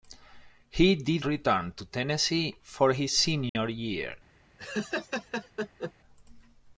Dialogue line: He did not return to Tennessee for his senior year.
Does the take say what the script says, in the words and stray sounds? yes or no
no